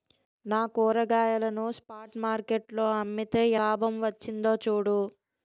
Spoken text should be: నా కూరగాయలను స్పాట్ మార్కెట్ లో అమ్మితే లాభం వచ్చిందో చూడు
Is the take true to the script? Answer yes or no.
yes